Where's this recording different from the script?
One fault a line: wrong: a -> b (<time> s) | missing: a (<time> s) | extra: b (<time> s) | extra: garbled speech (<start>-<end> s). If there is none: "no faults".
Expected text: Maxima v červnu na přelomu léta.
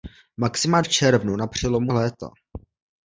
no faults